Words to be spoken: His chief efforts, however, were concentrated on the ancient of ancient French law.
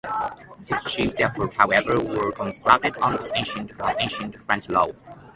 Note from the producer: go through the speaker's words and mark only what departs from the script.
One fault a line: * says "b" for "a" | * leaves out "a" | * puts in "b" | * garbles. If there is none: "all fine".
all fine